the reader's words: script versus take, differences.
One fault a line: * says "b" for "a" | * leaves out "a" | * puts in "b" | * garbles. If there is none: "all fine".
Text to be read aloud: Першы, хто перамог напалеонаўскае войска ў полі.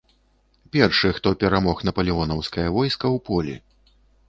all fine